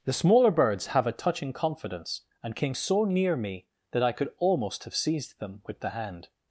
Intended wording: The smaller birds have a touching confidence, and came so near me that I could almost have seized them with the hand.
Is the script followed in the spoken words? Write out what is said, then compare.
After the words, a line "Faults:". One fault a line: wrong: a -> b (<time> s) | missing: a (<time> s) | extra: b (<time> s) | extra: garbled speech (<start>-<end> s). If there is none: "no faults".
The smaller birds have a touching confidence, and came so near me that I could almost have seized them with the hand.
Faults:
no faults